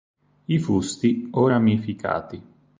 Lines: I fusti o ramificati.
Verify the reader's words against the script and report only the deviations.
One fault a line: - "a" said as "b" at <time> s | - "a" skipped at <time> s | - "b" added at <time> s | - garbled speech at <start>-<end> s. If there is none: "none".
none